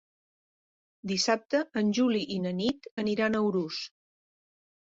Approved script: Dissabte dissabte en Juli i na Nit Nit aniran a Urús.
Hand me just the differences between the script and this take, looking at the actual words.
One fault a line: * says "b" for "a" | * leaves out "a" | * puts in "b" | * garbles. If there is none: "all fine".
* leaves out "dissabte"
* leaves out "Nit"